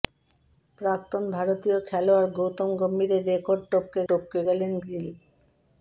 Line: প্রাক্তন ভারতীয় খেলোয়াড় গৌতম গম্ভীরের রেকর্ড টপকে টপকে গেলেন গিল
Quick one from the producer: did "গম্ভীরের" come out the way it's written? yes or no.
yes